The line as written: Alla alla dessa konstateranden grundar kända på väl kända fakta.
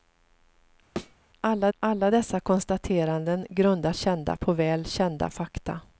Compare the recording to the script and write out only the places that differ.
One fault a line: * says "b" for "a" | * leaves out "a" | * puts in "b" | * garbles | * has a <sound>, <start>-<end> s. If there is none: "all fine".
* has a thud, 1.0-1.2 s